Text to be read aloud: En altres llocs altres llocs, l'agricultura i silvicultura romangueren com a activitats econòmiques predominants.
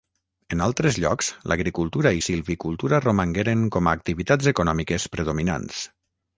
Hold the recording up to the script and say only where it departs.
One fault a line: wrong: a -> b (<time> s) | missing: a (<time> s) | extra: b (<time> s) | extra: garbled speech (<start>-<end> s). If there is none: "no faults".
missing: altres llocs (1.3 s)